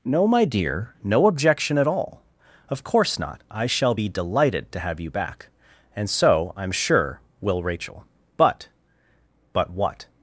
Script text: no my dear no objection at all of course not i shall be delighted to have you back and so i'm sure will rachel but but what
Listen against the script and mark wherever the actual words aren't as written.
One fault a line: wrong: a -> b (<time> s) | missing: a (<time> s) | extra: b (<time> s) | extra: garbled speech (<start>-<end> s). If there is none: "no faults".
no faults